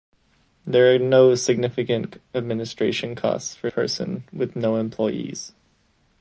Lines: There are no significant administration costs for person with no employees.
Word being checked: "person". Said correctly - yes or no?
yes